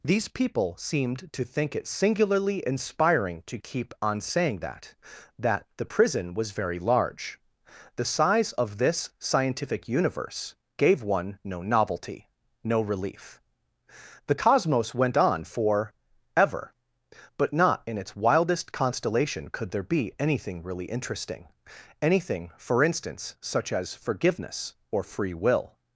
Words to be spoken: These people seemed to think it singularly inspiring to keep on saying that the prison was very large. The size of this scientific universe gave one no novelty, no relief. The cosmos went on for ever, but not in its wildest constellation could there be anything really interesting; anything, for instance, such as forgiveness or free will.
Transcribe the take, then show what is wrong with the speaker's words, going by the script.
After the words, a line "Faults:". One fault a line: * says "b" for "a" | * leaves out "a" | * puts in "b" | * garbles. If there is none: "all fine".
These people seemed to think it singularly inspiring to keep on saying that that the prison was very large. The size of this scientific universe gave one no novelty, no relief. The cosmos went on for ever, but not in its wildest constellation could there be anything really interesting; anything, for instance, such as forgiveness or free will.
Faults:
* puts in "that"